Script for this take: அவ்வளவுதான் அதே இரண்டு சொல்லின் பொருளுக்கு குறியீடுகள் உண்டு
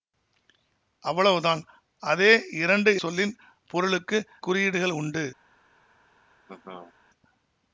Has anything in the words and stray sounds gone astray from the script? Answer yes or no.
yes